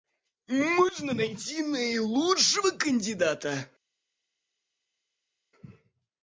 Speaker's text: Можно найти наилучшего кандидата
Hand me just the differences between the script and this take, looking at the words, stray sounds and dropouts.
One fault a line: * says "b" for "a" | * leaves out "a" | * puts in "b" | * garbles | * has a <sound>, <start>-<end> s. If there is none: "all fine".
all fine